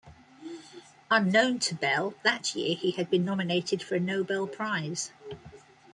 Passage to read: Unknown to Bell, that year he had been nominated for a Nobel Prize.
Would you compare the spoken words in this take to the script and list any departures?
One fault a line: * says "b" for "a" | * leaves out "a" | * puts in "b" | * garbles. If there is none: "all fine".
all fine